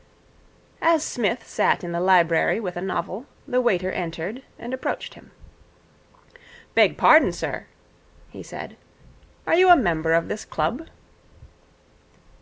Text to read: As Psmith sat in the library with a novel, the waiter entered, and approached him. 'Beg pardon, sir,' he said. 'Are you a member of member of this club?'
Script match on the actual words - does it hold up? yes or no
no